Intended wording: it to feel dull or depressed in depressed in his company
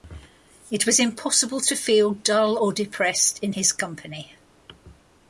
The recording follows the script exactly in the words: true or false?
false